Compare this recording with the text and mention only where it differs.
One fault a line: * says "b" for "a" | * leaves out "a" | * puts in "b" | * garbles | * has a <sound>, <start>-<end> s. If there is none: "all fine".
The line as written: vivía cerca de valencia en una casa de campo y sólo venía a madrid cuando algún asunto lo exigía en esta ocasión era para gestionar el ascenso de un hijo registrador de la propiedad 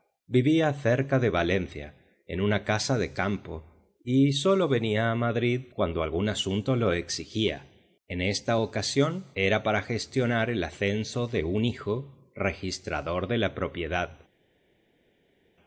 all fine